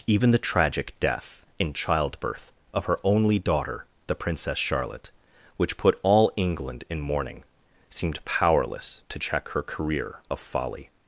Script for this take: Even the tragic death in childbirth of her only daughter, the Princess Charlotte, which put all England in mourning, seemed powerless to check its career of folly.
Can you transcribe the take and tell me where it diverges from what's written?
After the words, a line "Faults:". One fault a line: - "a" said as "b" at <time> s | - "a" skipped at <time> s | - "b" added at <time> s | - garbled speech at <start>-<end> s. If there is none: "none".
Even the tragic death in childbirth of her only daughter, the Princess Charlotte, which put all England in mourning, seemed powerless to check her career of folly.
Faults:
- "its" said as "her" at 9.5 s